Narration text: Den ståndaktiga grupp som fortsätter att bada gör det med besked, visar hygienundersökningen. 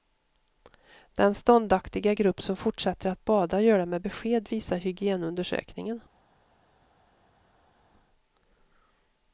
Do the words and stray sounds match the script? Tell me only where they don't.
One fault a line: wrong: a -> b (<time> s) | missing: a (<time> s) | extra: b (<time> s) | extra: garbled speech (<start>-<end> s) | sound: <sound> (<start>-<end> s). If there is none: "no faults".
no faults